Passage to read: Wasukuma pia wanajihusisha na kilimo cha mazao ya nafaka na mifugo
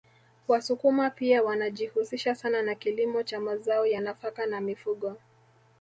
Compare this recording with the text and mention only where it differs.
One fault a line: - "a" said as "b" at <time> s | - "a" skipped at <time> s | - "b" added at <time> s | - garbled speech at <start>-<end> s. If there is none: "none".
- "sana" added at 2.4 s